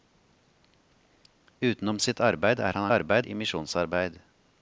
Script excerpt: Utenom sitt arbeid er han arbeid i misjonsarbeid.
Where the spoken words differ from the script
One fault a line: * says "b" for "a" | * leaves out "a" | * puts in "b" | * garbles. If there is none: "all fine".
all fine